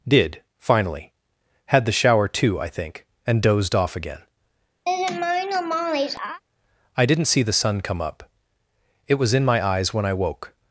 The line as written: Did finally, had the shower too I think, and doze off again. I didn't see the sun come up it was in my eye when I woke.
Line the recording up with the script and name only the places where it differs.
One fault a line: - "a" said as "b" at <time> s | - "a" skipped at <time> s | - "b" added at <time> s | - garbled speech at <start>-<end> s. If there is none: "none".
- "doze" said as "dozed" at 3.4 s
- "eye" said as "eyes" at 9.6 s